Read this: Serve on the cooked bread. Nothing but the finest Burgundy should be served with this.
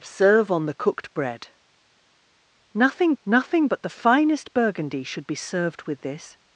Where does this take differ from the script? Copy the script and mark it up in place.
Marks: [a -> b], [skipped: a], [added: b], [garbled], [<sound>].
Serve on the cooked bread. Nothing [added: nothing] but the finest Burgundy should be served with this.